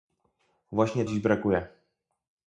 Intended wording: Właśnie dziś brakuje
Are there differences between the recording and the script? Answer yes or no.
no